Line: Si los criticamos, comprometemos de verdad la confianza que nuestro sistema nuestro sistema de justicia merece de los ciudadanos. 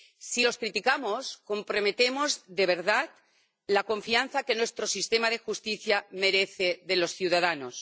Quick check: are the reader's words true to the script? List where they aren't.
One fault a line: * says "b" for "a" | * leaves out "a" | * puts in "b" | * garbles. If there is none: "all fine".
* leaves out "nuestro sistema"